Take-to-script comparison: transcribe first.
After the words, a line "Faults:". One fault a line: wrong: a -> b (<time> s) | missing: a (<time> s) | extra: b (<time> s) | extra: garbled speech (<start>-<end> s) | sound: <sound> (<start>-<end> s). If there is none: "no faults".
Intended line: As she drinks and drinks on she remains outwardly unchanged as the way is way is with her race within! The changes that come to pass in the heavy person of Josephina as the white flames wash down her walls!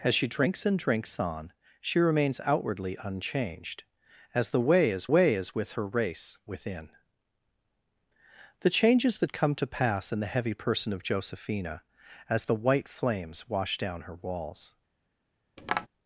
As she drinks and drinks on she remains outwardly unchanged as the way is way is with her race within! The changes that come to pass in the heavy person of Josephina as the white flames wash down her walls!
Faults:
sound: tap (15.6-15.9 s)